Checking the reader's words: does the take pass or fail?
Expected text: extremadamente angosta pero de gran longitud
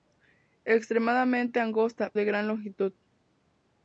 fail